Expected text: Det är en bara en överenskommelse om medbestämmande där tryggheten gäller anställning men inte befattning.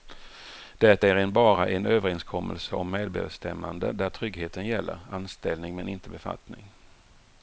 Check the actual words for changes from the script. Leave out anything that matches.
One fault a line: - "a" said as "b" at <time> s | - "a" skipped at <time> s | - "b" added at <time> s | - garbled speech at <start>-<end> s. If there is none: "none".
none